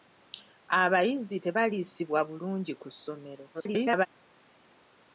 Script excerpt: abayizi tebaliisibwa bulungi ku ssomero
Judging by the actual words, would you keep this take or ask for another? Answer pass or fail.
fail